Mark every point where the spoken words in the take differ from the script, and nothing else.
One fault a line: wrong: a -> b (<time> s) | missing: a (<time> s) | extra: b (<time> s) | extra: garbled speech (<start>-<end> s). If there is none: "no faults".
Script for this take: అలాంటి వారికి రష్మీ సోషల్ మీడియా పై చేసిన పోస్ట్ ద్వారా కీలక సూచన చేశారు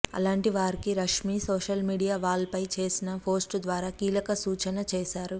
extra: వాల్ (2.2 s)